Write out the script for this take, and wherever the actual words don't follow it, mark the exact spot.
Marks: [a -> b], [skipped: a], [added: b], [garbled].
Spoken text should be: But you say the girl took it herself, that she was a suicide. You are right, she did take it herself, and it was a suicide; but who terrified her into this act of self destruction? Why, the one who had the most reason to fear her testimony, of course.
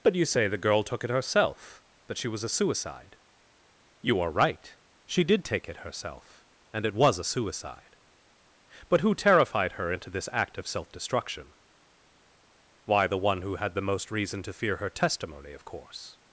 But you say the girl took it herself, that she was a suicide. You are right, she did take it herself, and it was a suicide; but who terrified her into this act of self destruction? Why, the one who had the most reason to fear her testimony, of course.